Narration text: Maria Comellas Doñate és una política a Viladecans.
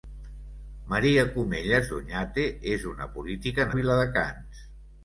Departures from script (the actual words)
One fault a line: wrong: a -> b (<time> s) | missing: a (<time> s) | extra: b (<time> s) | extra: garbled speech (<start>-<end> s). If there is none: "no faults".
no faults